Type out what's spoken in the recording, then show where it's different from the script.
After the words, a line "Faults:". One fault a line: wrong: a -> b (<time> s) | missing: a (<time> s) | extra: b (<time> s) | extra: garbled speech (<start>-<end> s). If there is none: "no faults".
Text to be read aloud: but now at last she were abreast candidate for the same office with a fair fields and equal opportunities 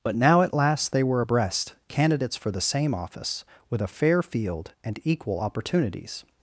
but now at last they were abreast candidates for the same office with a fair field and equal opportunities
Faults:
wrong: she -> they (0.9 s)
wrong: candidate -> candidates (1.9 s)
wrong: fields -> field (4.2 s)